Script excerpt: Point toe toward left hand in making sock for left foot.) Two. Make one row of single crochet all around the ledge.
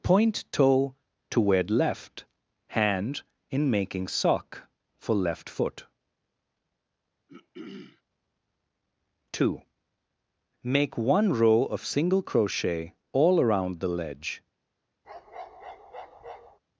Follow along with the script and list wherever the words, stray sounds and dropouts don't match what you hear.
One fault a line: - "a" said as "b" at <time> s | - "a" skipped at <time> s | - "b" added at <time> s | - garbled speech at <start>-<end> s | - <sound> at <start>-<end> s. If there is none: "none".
- throat clearing at 7.3-8.0 s
- bark at 15.0-16.6 s